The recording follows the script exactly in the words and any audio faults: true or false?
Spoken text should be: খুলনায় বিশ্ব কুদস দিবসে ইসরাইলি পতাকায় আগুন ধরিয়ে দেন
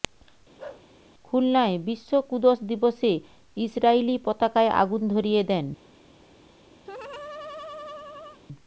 false